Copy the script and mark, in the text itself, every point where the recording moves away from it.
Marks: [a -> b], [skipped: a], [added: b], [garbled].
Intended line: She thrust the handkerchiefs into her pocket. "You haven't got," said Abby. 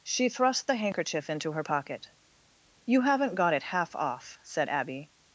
She thrust the [handkerchiefs -> handkerchief] into her pocket. "You haven't got," [added: it half off] said Abby.